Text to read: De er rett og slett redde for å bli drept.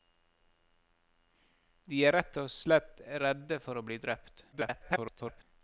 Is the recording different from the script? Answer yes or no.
yes